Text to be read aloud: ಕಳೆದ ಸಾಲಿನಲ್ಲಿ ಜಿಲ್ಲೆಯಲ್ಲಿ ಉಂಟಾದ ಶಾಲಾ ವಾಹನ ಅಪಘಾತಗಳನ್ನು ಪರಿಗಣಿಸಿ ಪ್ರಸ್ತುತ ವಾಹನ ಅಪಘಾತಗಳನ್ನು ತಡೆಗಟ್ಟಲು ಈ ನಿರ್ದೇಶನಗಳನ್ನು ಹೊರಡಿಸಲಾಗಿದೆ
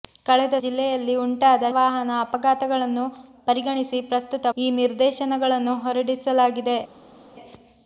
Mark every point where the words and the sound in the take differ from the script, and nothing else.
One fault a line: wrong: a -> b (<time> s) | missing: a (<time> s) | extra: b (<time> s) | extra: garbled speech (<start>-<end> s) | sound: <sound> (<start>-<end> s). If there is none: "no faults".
missing: ಸಾಲಿನಲ್ಲಿ (0.6 s)
missing: ಶಾಲಾ (1.7 s)
missing: ವಾಹನ ಅಪಘಾತಗಳನ್ನು ತಡೆಗಟ್ಟಲು (4.5 s)